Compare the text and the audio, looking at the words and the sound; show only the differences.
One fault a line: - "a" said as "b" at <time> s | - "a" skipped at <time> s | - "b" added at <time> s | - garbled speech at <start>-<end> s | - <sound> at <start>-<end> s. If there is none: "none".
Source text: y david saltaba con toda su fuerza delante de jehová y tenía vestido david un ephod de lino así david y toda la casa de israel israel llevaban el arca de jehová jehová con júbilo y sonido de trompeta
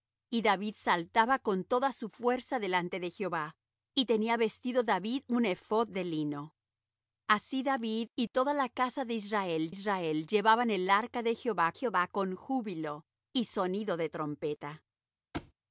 - thud at 15.3-15.5 s